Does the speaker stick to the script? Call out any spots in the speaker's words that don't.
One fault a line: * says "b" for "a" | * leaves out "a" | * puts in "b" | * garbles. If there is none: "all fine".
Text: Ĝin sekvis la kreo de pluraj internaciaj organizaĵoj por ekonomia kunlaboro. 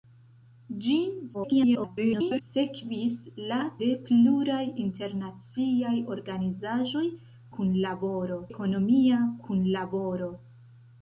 * garbles
* leaves out "kreo"
* says "kunlaboro" for "por"